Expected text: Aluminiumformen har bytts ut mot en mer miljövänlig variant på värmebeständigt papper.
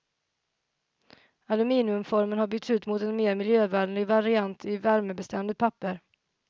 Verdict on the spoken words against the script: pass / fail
fail